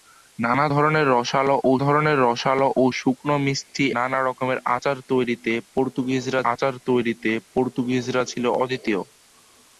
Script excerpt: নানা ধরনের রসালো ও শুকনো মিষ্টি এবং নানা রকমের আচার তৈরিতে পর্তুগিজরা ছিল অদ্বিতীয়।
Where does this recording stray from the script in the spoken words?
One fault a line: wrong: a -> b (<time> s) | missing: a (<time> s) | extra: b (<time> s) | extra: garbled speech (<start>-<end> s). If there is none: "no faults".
extra: ধরনের রসালো ও (1.8 s)
missing: এবং (3.9 s)
extra: আচার তৈরিতে পর্তুগিজরা (6.5 s)